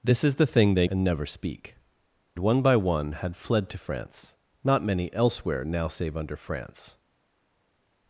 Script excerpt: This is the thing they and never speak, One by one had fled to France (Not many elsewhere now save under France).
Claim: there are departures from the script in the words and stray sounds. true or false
false